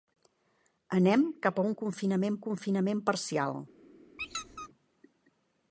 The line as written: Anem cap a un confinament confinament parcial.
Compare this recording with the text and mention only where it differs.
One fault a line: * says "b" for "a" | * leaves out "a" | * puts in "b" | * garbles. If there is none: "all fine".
all fine